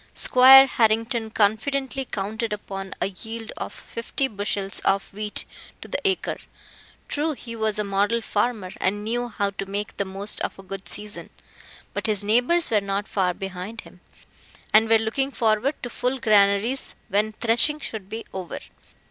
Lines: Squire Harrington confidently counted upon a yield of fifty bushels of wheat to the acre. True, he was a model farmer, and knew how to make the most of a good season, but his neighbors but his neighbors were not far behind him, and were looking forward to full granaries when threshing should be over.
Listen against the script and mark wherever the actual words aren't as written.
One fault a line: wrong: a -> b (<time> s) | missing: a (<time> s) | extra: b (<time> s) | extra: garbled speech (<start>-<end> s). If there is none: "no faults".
missing: but his neighbors (12.7 s)